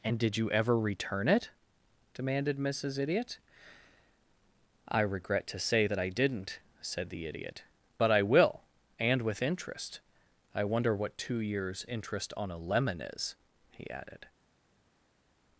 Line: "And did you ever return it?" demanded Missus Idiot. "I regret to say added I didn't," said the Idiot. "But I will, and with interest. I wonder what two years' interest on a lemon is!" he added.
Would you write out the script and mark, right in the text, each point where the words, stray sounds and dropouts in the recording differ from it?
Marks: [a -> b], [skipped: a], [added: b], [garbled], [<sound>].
"And did you ever return it?" demanded Missus Idiot. "I regret to say [added -> that] I didn't," said the Idiot. "But I will, and with interest. I wonder what two years' interest on a lemon is!" he added.